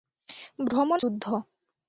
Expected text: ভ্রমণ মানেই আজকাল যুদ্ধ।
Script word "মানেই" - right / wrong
wrong